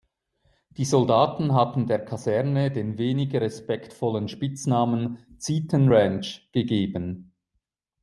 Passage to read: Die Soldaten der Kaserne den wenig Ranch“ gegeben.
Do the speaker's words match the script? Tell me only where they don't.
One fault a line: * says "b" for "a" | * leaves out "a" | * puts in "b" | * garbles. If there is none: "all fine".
* puts in "hatten"
* puts in "respektvollen Spitznamen Zieten"